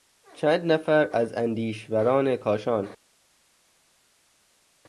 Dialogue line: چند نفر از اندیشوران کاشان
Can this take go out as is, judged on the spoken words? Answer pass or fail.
pass